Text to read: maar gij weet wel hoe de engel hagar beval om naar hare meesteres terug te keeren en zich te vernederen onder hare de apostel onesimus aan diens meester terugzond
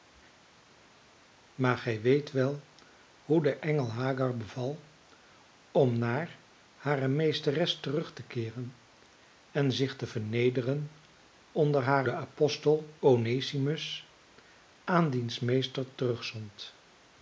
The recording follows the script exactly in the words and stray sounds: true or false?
true